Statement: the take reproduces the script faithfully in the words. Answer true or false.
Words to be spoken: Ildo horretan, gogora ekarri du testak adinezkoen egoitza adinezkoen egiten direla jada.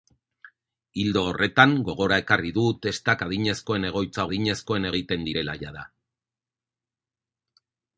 true